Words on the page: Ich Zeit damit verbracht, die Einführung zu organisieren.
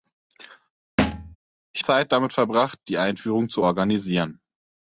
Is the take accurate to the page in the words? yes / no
yes